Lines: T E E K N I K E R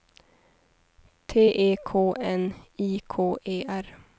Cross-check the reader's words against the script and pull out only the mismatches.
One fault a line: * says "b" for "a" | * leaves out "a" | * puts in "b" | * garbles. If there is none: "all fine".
* leaves out "E"